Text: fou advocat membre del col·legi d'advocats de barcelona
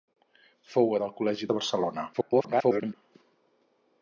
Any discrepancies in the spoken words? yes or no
yes